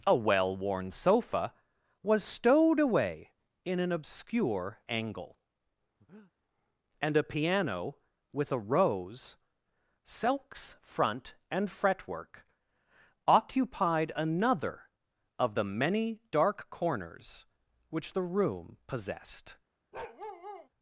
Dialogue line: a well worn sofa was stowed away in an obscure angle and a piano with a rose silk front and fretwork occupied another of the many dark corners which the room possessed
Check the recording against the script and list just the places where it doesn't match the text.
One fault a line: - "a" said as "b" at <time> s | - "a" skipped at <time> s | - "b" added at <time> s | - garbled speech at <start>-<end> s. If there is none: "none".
- "silk" said as "silks" at 10.0 s